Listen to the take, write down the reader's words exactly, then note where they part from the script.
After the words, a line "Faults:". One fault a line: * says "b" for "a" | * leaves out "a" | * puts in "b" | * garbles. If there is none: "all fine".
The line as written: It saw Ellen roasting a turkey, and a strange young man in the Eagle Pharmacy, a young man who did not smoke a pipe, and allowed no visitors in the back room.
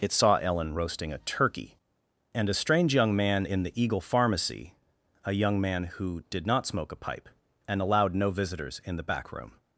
It saw Ellen roasting a turkey, and a strange young man in the Eagle Pharmacy, a young man who did not smoke a pipe, and allowed no visitors in the back room.
Faults:
all fine